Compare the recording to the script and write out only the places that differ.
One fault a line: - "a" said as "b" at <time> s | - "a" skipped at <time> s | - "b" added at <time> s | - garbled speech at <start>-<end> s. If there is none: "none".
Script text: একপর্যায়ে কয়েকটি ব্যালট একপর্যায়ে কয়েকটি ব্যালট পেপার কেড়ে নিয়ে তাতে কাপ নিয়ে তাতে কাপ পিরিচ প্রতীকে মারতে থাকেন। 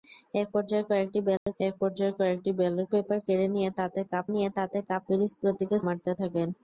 none